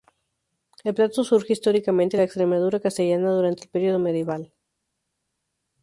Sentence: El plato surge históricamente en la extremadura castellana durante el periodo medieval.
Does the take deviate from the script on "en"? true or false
false